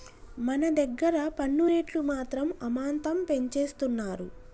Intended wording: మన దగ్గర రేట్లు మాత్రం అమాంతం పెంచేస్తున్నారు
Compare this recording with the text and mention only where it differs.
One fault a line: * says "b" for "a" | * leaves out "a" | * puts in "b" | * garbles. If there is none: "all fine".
* puts in "పన్ను"